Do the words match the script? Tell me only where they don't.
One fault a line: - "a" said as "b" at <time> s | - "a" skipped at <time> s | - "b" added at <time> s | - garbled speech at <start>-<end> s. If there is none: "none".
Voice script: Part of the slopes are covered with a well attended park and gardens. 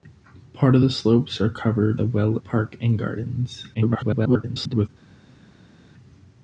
- "with" skipped at 2.0 s
- "attended" skipped at 2.4 s
- garbled speech at 3.7-4.9 s